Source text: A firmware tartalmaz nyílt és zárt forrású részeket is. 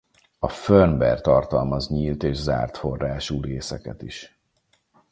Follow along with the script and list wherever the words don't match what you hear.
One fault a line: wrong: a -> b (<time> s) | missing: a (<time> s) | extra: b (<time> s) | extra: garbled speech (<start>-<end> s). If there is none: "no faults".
no faults